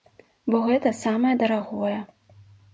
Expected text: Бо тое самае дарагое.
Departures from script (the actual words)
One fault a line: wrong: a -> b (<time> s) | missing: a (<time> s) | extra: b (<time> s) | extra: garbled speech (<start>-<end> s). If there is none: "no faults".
wrong: тое -> гэта (0.7 s)